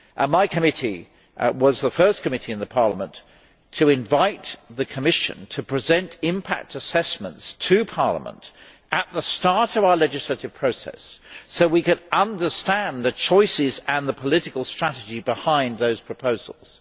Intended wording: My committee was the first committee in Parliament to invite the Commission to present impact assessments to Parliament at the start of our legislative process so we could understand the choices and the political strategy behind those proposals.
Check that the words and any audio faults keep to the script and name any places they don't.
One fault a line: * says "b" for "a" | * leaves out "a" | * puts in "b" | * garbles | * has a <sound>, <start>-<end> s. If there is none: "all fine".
all fine